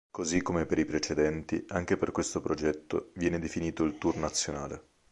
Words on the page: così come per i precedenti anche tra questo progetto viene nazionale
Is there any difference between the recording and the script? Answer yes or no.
yes